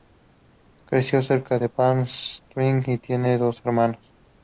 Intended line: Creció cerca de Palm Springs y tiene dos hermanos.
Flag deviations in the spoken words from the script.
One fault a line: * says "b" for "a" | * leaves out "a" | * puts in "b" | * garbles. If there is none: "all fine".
all fine